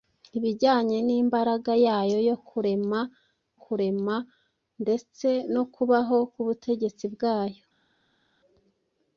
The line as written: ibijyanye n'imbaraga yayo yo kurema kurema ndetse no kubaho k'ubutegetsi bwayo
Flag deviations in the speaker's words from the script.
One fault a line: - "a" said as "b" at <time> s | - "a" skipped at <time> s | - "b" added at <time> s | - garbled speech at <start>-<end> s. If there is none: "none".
none